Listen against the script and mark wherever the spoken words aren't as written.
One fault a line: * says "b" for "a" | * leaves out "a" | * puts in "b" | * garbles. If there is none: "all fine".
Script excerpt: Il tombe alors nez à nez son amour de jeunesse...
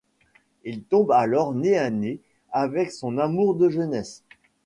* puts in "avec"